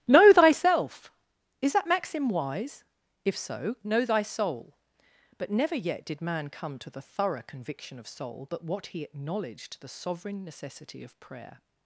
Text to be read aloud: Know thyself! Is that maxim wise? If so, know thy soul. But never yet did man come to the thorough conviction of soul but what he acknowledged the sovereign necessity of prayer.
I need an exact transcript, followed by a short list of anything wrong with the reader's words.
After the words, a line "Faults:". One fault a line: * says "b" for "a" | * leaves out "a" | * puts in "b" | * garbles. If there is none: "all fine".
Know thyself! Is that maxim wise? If so, know thy soul. But never yet did man come to the thorough conviction of soul but what he acknowledged the sovereign necessity of prayer.
Faults:
all fine